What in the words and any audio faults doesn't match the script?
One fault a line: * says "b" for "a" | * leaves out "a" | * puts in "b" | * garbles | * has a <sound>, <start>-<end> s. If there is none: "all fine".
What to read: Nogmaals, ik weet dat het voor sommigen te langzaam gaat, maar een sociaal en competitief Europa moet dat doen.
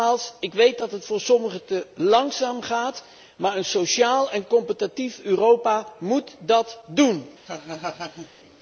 * has a laugh, 7.4-8.3 s